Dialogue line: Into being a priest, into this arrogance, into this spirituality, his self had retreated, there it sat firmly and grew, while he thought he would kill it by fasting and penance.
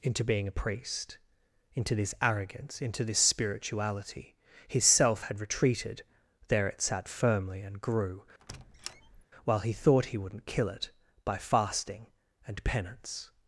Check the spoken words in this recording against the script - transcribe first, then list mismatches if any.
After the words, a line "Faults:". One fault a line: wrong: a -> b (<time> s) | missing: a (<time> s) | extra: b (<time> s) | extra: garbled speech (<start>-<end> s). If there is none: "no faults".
Into being a priest, into this arrogance, into this spirituality, his self had retreated, there it sat firmly and grew, while he thought he wouldn't kill it by fasting and penance.
Faults:
wrong: would -> wouldn't (10.2 s)